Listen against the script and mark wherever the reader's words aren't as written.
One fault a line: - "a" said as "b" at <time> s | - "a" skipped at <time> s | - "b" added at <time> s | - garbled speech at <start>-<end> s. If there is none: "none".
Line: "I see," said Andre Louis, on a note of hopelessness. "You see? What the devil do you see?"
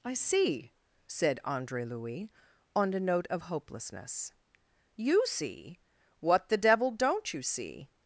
- "do" said as "don't" at 6.9 s